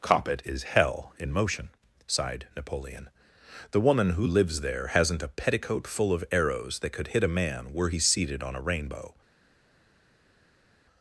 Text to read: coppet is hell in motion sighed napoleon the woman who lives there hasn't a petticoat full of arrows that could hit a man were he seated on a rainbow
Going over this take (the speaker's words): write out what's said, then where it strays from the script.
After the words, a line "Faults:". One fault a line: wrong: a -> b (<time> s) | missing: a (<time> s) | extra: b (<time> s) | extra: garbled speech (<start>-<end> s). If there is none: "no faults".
coppet is hell in motion sighed napoleon the woman who lives there hasn't a petticoat full of arrows that could hit a man were he seated on a rainbow
Faults:
no faults